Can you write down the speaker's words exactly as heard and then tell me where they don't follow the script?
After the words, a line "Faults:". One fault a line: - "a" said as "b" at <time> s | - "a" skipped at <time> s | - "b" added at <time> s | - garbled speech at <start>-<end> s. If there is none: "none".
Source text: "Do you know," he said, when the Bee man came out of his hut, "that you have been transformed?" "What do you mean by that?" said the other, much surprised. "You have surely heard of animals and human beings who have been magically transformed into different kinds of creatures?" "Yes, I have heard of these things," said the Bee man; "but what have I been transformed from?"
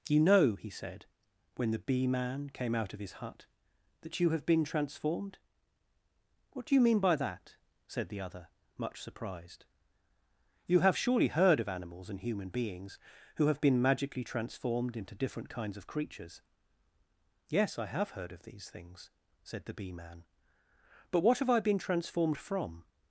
you know," he said, when the Bee man came out of his hut, "that you have been transformed?" "What do you mean by that?" said the other, much surprised. "You have surely heard of animals and human beings who have been magically transformed into different kinds of creatures?" "Yes, I have heard of these things," said the Bee man; "but what have I been transformed from?"
Faults:
- "Do" skipped at 0.1 s